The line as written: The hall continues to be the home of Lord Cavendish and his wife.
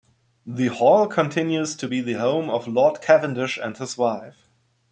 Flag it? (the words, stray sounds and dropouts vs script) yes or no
no